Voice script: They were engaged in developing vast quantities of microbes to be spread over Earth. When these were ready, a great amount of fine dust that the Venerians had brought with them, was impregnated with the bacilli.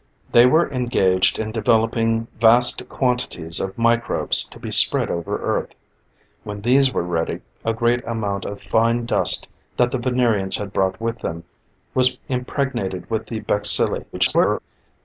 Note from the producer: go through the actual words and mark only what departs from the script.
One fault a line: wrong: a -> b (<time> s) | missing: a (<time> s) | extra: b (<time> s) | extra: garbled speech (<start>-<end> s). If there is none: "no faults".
extra: garbled speech (14.1-14.6 s)